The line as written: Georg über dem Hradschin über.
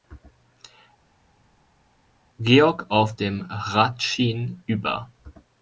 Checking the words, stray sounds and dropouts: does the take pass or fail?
fail